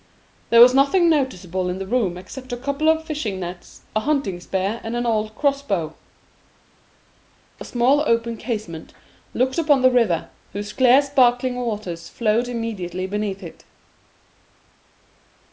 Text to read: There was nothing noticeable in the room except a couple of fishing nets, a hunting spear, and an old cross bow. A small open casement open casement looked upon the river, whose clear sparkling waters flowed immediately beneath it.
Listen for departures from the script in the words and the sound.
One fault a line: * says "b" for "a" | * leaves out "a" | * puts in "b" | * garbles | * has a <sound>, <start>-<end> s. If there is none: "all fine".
* leaves out "open casement"